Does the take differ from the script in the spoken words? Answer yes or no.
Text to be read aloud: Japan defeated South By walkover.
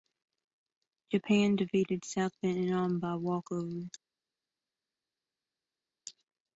yes